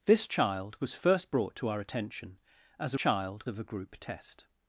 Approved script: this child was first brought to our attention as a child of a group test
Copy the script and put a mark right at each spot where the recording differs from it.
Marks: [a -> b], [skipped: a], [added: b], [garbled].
this child was first brought to our attention as a child of a group test